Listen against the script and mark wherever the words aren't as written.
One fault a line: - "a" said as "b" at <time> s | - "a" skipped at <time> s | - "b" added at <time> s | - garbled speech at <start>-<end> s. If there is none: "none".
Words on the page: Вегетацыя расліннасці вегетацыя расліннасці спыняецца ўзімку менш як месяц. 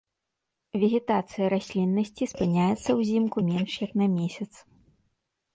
- "вегетацыя расліннасці" skipped at 2.3 s
- "на" added at 4.0 s